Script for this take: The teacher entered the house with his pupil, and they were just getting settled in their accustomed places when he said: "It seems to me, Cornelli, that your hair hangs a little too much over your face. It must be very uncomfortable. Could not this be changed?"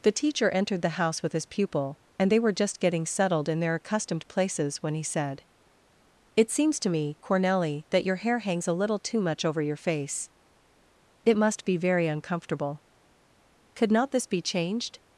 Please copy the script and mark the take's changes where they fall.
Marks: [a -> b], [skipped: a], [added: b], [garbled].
The teacher entered the house with his pupil, and they were just getting settled in their accustomed places when he said: "It seems to me, Cornelli, that your hair hangs a little too much over your face. It must be very uncomfortable. Could not this be changed?"